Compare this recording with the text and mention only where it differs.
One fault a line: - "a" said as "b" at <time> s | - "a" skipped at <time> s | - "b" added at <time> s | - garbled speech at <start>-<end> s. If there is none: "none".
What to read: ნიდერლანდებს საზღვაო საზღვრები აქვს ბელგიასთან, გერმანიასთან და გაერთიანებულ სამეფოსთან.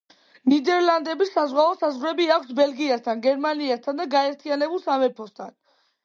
none